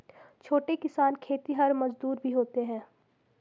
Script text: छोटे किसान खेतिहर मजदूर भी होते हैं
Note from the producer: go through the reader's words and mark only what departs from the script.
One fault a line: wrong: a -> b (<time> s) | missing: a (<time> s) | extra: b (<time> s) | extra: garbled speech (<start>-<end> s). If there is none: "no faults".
no faults